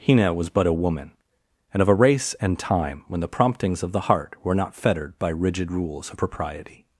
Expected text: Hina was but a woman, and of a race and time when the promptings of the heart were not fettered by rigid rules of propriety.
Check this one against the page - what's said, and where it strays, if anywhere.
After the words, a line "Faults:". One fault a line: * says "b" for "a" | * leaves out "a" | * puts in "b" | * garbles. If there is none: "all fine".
Hina was but a woman, and of a race and time when the promptings of the heart were not fettered by rigid rules of propriety.
Faults:
all fine